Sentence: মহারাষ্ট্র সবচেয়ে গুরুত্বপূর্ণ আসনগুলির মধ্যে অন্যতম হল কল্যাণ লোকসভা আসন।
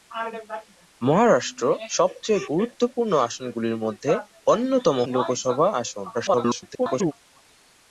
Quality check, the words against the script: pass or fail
fail